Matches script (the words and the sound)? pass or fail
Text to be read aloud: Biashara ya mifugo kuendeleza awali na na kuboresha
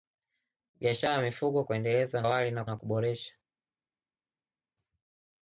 pass